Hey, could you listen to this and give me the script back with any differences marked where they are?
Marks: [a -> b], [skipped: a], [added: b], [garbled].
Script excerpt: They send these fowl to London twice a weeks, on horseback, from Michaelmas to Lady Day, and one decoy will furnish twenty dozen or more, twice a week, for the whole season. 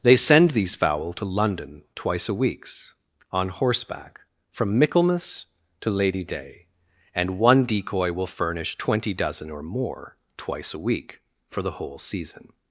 They send these fowl to London twice a weeks, on horseback, from Michaelmas to Lady Day, and one decoy will furnish twenty dozen or more, twice a week, for the whole season.